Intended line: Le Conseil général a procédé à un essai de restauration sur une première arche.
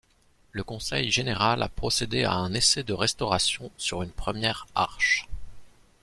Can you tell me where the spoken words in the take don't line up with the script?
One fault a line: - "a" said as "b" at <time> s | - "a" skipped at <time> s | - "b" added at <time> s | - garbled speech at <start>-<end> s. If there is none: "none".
none